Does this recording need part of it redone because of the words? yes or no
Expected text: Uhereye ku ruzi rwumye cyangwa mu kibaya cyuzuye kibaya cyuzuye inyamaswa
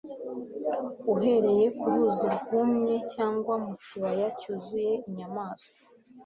yes